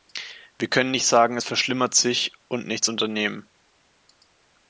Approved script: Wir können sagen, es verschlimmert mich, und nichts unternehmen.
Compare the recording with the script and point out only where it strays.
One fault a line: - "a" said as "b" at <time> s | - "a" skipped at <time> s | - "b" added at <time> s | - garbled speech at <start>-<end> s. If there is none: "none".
- "nicht" added at 0.9 s
- "mich" said as "sich" at 1.9 s